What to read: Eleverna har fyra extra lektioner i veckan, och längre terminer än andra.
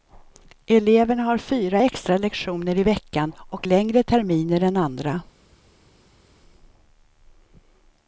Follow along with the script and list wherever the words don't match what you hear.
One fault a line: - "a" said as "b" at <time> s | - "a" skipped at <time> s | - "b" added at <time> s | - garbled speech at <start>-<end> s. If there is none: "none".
none